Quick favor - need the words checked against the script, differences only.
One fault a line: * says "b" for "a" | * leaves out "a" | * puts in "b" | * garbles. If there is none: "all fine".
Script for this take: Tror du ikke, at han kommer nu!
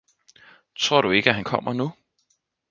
all fine